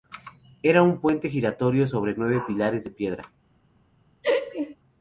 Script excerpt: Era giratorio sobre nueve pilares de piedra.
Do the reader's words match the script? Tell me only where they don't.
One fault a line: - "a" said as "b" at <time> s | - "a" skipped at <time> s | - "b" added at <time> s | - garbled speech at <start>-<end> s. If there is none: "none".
- "un puente" added at 0.8 s